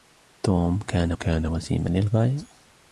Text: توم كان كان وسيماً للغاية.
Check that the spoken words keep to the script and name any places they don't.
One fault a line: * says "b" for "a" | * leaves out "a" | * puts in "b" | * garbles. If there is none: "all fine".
all fine